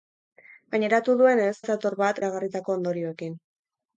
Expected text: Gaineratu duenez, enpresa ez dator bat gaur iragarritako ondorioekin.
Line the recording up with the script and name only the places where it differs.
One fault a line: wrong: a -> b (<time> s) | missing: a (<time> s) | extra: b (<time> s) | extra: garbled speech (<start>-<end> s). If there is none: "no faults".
missing: enpresa (1.5 s)
missing: gaur (2.2 s)